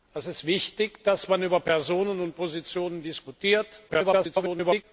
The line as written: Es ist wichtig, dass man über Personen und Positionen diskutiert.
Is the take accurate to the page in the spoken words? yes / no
no